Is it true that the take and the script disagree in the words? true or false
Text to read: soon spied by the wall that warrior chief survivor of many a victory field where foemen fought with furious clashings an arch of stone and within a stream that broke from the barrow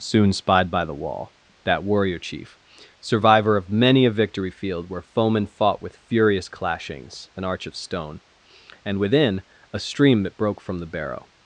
false